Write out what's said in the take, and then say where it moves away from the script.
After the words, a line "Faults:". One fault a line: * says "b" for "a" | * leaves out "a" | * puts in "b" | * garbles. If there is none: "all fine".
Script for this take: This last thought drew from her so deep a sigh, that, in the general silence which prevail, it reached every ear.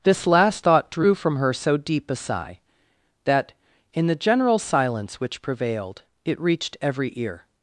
This last thought drew from her so deep a sigh, that, in the general silence which prevailed, it reached every ear.
Faults:
* says "prevailed" for "prevail"